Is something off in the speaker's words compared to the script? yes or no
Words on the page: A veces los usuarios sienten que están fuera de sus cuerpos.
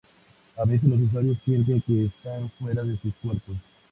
no